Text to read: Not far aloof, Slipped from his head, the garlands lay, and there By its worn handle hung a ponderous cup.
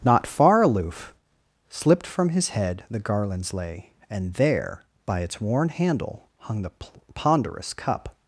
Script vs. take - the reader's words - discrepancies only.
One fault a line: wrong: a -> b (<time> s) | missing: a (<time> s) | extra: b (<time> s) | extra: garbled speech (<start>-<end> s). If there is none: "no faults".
wrong: a -> the (6.6 s)